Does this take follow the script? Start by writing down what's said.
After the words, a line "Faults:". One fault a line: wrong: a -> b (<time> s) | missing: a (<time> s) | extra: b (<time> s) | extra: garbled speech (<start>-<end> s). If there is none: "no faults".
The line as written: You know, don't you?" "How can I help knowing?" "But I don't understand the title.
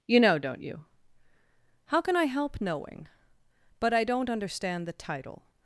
You know, don't you?" "How can I help knowing?" "But I don't understand the title.
Faults:
no faults